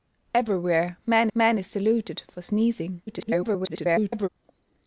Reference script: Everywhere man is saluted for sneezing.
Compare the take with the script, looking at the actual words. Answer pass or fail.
fail